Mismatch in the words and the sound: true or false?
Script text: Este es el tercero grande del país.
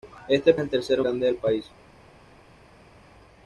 false